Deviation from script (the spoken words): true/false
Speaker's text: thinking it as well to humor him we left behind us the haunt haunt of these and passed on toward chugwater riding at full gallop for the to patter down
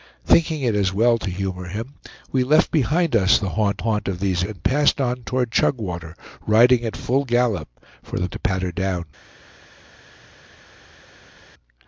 false